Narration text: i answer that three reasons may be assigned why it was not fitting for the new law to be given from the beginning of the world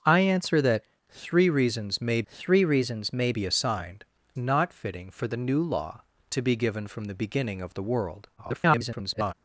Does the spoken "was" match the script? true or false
false